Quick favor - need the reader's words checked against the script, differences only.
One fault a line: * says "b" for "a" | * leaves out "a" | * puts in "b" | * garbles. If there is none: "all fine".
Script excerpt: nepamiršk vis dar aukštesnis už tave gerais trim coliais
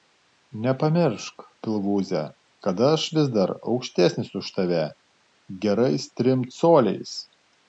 * puts in "pilvūze kad aš"